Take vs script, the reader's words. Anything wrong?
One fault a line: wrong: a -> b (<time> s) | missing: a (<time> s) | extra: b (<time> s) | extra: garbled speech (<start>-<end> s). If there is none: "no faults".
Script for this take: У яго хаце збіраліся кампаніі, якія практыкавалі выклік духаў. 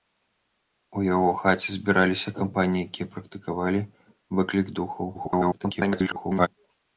extra: garbled speech (5.1-6.5 s)